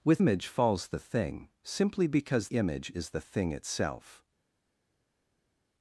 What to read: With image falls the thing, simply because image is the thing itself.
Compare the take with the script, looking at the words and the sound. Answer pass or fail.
pass